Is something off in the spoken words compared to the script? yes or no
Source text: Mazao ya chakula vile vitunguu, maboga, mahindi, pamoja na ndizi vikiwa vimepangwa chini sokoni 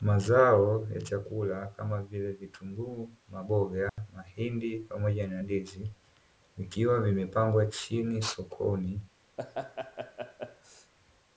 yes